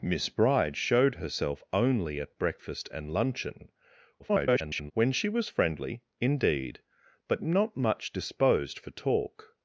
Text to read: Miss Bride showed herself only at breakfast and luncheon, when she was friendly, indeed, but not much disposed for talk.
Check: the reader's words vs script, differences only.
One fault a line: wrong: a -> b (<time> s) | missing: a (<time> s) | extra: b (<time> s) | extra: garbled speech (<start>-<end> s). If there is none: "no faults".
extra: garbled speech (4.2-4.9 s)